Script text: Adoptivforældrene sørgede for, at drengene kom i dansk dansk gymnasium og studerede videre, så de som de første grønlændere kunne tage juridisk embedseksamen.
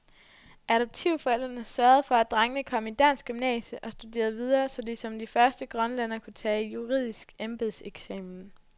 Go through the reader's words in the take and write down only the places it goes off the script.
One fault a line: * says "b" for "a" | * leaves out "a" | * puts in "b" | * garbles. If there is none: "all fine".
* leaves out "dansk"